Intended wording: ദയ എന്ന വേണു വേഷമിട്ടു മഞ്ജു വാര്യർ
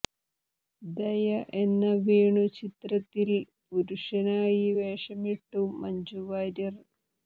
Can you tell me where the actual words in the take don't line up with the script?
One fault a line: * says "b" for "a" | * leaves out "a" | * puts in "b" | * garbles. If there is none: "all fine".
* puts in "ചിത്രത്തിൽ പുരുഷനായി"